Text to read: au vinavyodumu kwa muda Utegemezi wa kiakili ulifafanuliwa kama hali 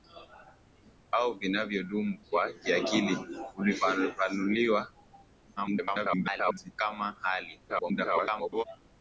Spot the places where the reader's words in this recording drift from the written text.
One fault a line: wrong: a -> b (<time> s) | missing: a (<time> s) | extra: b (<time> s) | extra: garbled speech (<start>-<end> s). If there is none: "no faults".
missing: kwa muda Utegemezi (2.2 s)
extra: garbled speech (5.6-6.7 s)
extra: garbled speech (7.7-8.6 s)